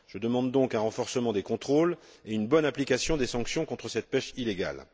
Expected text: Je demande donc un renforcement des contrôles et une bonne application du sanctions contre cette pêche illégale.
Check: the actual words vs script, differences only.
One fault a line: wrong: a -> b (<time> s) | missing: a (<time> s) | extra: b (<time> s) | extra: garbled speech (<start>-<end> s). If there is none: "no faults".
wrong: du -> des (3.2 s)